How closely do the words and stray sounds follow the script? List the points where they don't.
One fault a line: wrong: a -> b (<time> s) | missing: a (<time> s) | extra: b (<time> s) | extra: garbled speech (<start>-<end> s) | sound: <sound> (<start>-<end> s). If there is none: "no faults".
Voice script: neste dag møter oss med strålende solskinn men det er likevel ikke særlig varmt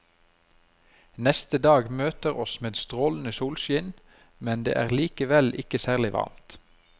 no faults